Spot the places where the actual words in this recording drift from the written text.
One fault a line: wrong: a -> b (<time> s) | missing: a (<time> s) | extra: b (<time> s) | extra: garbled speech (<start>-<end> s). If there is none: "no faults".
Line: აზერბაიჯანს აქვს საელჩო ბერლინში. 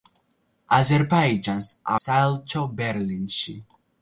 missing: აქვს (1.7 s)